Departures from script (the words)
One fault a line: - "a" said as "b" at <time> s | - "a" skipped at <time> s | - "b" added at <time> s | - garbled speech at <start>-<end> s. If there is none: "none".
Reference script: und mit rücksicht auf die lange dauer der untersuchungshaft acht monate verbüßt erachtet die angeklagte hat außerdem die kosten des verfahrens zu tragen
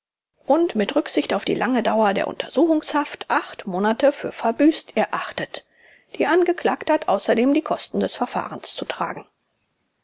- "für" added at 4.1 s